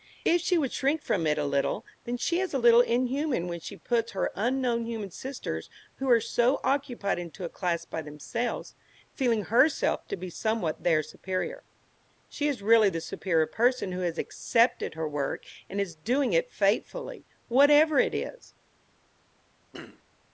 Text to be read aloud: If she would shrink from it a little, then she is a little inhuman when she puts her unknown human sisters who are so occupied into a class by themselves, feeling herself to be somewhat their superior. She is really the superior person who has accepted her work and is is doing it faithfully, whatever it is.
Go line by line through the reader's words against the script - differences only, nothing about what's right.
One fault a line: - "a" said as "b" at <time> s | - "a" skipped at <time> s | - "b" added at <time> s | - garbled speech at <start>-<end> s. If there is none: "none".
- "is" skipped at 15.9 s